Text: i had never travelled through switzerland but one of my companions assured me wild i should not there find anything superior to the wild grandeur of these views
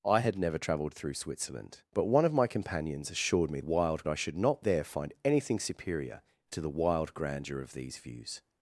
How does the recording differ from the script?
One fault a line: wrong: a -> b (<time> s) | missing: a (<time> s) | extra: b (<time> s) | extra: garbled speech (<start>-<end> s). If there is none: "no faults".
no faults